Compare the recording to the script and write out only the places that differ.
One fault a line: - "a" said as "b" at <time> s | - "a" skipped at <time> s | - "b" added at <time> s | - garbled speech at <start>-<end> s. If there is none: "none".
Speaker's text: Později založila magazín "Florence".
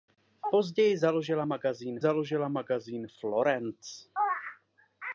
- "založila magazín" added at 2.0 s